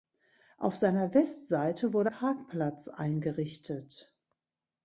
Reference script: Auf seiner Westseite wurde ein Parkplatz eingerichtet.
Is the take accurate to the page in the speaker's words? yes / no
no